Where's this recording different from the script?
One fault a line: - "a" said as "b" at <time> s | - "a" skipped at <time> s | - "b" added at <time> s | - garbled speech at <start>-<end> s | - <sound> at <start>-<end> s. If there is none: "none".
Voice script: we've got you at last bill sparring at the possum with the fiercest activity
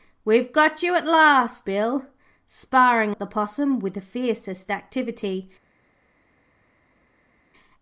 none